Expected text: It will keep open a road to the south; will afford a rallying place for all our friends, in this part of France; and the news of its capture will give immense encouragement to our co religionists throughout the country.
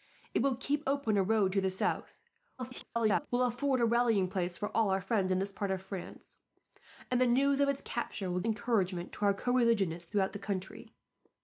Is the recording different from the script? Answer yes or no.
yes